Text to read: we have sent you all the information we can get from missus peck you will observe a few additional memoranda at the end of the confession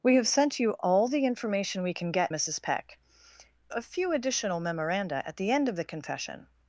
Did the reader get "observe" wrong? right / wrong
wrong